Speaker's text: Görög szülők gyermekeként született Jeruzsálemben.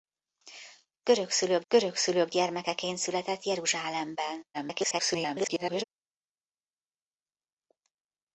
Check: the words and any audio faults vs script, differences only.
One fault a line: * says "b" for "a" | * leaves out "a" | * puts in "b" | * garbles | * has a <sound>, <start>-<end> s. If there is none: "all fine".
* puts in "görög szülők"
* garbles